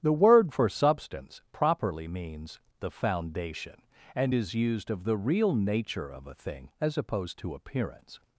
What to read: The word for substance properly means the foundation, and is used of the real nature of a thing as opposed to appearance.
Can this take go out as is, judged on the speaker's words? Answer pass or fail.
pass